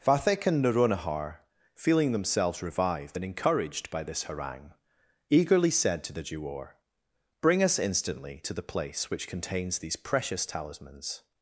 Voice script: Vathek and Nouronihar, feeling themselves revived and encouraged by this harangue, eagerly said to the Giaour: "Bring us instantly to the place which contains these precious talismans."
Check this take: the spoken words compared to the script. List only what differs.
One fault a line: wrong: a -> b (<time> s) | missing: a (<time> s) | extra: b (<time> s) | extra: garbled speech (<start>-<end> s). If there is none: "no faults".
no faults